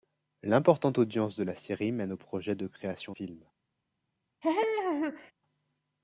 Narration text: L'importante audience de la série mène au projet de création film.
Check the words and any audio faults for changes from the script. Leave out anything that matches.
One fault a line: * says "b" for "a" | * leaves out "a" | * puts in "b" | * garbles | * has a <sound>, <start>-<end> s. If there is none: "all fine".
* has a laugh, 4.4-5.3 s